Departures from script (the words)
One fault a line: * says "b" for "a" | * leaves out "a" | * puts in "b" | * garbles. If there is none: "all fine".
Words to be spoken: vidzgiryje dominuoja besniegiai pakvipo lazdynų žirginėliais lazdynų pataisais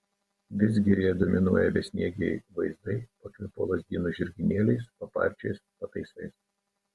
* puts in "vaizdai"
* says "paparčiais" for "lazdynų"